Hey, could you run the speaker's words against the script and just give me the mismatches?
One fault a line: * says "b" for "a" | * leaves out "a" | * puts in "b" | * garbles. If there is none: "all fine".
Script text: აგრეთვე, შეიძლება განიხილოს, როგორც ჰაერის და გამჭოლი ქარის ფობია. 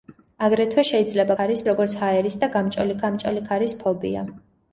* says "ქარის" for "განიხილოს"
* puts in "გამჭოლი"